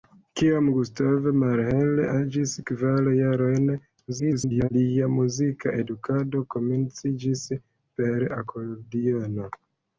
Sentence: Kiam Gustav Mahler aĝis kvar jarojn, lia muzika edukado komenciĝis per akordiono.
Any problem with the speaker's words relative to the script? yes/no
yes